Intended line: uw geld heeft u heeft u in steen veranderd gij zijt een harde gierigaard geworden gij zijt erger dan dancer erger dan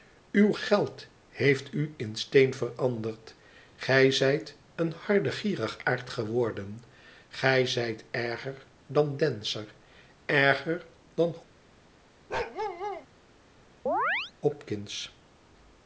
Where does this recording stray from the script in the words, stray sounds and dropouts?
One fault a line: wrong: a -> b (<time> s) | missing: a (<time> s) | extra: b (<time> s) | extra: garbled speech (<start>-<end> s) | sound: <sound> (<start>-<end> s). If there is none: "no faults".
missing: heeft u (1.9 s)
sound: bark (12.3-13.1 s)
sound: chirp (13.9-14.3 s)